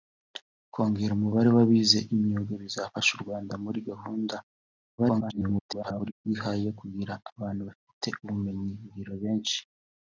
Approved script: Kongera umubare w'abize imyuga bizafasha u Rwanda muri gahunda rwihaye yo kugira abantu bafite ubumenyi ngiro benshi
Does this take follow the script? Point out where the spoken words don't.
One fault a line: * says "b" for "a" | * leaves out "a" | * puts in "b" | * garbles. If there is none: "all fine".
* garbles